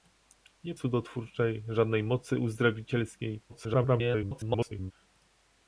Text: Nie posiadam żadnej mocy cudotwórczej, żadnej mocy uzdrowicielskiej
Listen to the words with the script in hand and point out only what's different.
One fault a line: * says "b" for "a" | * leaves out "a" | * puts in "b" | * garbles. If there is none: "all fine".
* leaves out "posiadam żadnej mocy"
* garbles